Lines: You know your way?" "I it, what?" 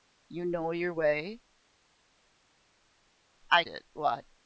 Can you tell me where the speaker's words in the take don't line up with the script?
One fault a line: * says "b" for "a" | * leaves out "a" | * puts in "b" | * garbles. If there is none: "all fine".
all fine